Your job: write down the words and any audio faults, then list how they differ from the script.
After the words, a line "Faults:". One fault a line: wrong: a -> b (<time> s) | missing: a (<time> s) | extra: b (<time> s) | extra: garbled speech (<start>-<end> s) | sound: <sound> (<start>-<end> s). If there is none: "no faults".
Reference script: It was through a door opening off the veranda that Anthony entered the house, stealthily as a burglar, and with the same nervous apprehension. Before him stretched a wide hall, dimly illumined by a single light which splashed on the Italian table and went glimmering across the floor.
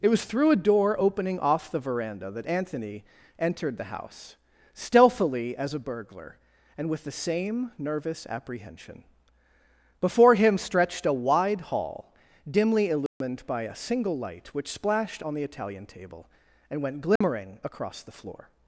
It was through a door opening off the veranda that Anthony entered the house, stealthily as a burglar, and with the same nervous apprehension. Before him stretched a wide hall, dimly illumined by a single light which splashed on the Italian table and went glimmering across the floor.
Faults:
sound: dropout (13.1-13.2 s)
sound: dropout (17.2-17.2 s)